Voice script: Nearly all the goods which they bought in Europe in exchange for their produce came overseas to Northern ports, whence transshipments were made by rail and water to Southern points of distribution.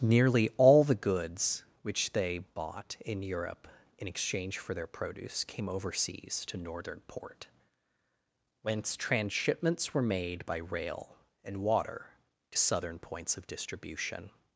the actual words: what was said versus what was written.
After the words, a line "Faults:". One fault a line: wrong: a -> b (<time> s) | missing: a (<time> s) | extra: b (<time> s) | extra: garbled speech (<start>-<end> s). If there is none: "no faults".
Nearly all the goods which they bought in Europe in exchange for their produce came overseas to Northern port, whence transshipments were made by rail and water to Southern points of distribution.
Faults:
wrong: ports -> port (7.0 s)